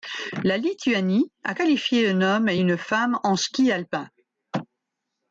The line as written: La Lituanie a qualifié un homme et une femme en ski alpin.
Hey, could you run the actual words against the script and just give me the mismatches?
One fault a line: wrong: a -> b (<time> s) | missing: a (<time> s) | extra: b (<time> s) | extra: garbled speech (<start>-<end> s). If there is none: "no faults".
no faults